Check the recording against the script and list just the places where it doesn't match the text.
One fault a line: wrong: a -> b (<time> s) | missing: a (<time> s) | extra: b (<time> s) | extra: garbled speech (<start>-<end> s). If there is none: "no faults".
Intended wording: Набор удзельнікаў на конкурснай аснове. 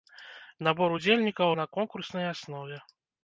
no faults